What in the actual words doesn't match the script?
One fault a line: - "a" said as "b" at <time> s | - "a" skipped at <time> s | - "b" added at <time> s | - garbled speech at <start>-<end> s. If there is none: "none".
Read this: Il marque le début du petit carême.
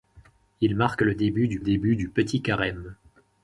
- "début du" added at 1.6 s